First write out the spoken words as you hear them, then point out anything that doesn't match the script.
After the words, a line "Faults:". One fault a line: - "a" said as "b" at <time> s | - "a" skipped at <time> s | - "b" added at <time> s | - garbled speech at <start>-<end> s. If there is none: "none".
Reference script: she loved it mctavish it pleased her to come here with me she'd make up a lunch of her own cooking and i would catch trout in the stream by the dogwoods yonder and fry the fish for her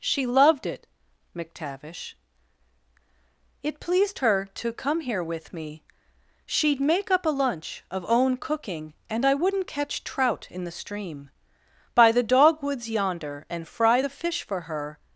she loved it mctavish it pleased her to come here with me she'd make up a lunch of own cooking and i wouldn't catch trout in the stream by the dogwoods yonder and fry the fish for her
Faults:
- "her" skipped at 8.0 s
- "would" said as "wouldn't" at 9.3 s